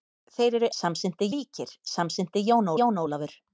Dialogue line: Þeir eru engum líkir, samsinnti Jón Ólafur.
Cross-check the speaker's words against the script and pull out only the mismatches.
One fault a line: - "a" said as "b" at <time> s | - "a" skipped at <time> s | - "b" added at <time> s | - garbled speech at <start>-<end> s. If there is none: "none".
- "engum" said as "samsinnti" at 0.8 s
- "Jón" added at 2.8 s